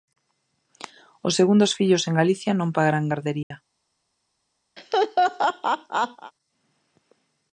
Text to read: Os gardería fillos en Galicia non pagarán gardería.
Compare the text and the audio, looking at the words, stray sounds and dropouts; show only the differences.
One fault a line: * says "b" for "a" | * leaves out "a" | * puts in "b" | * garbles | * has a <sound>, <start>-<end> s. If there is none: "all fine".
* says "segundos" for "gardería"
* has a dropout, 3.4-3.5 s
* has a laugh, 4.8-6.3 s